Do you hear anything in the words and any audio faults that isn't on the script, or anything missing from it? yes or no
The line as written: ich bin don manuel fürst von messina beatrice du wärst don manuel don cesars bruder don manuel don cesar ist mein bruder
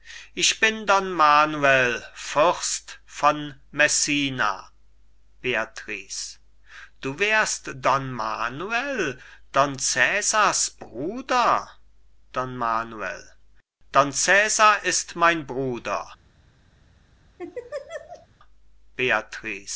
yes